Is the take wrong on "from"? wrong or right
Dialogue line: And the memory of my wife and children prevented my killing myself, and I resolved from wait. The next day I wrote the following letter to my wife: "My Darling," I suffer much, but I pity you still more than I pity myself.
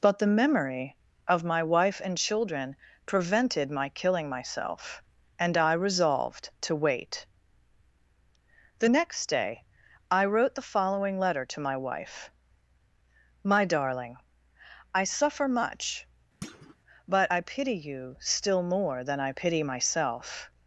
wrong